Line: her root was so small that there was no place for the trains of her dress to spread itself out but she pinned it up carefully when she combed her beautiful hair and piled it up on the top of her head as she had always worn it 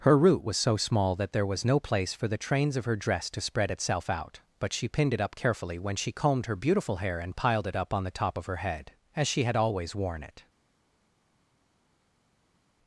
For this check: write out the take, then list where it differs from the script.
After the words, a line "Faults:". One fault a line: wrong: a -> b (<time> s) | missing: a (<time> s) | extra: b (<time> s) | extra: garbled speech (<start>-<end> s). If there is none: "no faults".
her root was so small that there was no place for the trains of her dress to spread itself out but she pinned it up carefully when she combed her beautiful hair and piled it up on the top of her head as she had always worn it
Faults:
no faults